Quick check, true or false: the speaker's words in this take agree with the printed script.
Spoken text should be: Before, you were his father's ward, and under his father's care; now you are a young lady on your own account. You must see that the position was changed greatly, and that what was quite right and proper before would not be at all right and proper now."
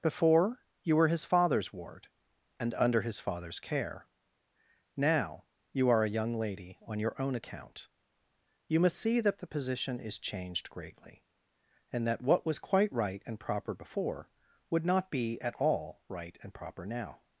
false